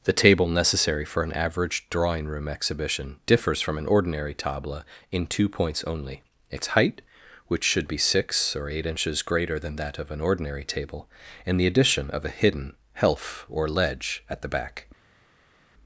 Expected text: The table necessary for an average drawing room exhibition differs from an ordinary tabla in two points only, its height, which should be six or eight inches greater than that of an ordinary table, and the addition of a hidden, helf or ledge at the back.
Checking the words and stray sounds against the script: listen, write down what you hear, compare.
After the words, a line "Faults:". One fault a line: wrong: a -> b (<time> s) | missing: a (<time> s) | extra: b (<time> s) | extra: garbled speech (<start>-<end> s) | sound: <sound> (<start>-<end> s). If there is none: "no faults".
The table necessary for an average drawing room exhibition differs from an ordinary tabla in two points only, its height, which should be six or eight inches greater than that of an ordinary table, and the addition of a hidden, helf or ledge at the back.
Faults:
no faults